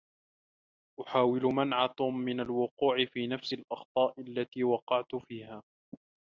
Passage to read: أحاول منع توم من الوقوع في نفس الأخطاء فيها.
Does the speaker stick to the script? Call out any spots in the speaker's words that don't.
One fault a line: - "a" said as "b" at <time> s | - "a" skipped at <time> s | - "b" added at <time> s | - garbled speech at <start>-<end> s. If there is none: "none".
- "التي وقعت" added at 4.2 s